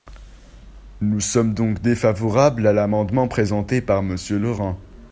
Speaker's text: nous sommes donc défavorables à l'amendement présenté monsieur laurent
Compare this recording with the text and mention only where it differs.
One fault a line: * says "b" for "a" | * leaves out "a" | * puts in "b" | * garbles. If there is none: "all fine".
* puts in "par"